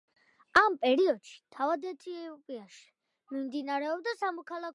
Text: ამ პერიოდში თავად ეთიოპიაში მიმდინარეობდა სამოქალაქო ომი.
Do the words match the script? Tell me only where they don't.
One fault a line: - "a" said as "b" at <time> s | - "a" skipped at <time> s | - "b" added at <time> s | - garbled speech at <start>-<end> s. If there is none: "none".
none